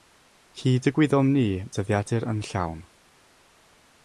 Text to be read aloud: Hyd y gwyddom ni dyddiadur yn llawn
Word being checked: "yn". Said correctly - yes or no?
yes